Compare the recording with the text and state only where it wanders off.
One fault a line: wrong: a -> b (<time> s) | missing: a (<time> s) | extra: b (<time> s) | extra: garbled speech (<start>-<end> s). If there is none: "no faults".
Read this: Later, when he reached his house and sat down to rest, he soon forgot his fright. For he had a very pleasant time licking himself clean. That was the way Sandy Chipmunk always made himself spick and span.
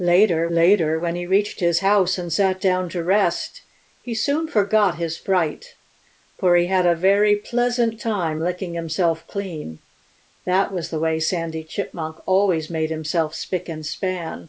extra: later (0.5 s)